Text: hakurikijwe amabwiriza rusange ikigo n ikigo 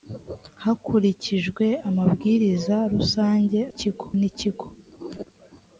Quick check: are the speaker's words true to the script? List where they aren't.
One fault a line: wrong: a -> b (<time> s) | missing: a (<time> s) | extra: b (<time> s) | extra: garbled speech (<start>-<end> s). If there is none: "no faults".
no faults